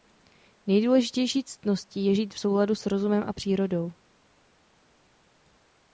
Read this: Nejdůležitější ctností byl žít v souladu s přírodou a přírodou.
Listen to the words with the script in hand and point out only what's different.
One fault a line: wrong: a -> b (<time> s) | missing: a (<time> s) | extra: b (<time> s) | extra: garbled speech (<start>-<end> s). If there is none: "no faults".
wrong: byl -> je (2.0 s)
wrong: přírodou -> rozumem (2.9 s)